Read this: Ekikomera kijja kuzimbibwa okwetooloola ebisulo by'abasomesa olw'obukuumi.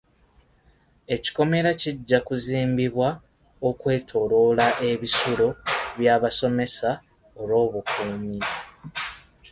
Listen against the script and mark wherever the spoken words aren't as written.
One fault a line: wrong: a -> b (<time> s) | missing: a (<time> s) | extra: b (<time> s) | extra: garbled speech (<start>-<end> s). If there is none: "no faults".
no faults